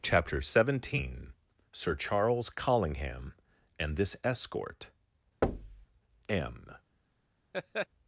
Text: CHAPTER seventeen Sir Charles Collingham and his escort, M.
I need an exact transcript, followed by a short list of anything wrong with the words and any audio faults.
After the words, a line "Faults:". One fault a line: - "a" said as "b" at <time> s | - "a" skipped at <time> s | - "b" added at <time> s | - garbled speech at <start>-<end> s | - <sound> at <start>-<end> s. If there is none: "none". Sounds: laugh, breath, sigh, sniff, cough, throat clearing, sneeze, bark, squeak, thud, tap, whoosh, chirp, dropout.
CHAPTER seventeen Sir Charles Collingham and this escort, M.
Faults:
- "his" said as "this" at 4.0 s
- thud at 5.4-5.9 s
- laugh at 7.5-7.9 s